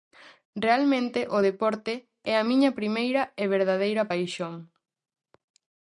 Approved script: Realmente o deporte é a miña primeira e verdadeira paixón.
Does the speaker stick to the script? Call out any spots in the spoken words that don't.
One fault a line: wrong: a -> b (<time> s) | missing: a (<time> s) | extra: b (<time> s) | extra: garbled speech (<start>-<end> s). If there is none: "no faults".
no faults